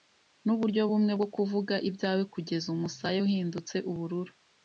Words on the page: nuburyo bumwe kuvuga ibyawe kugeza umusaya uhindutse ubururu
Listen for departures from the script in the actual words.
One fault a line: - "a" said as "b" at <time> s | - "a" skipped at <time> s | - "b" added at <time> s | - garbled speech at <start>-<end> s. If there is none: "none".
- "bwo" added at 1.2 s